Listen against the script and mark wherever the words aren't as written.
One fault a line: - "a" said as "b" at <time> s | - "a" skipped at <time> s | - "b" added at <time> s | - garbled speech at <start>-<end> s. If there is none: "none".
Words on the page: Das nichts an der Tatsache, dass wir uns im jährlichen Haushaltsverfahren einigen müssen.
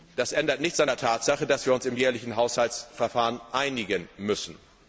- "ändert" added at 0.3 s